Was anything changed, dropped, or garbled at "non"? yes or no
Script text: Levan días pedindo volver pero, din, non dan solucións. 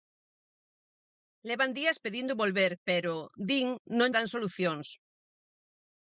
no